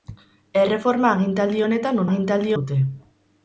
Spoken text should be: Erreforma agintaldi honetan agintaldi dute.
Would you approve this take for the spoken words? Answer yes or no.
yes